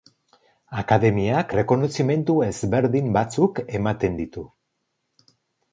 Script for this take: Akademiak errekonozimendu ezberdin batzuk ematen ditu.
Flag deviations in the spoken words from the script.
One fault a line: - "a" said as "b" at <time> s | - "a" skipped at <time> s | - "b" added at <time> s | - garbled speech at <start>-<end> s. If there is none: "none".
none